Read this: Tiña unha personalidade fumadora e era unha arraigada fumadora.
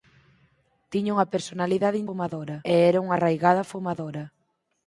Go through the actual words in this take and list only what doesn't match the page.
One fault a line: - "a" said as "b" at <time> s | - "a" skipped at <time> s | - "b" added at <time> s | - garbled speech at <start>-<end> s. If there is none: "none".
none